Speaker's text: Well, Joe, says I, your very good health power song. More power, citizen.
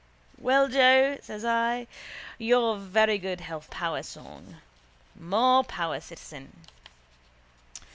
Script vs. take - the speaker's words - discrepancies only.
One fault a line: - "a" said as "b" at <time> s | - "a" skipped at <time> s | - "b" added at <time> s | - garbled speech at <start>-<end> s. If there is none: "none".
none